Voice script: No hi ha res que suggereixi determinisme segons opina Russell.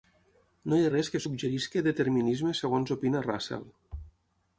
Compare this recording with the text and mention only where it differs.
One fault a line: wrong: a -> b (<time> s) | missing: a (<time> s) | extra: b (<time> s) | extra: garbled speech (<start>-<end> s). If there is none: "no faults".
no faults